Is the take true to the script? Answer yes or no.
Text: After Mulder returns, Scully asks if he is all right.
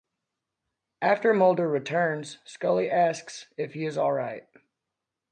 yes